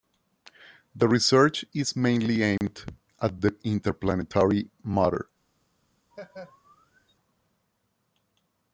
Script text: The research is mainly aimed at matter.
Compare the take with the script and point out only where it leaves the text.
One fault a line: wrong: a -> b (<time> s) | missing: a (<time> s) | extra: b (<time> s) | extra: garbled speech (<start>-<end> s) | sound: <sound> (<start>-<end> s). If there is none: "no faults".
sound: dropout (2.6-2.6 s)
extra: the interplanetary (3.4 s)
sound: laugh (6.1-7.1 s)